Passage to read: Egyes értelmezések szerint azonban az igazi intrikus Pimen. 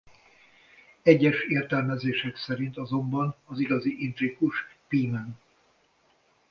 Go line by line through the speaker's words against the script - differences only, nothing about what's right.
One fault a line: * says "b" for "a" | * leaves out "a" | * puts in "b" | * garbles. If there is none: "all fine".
all fine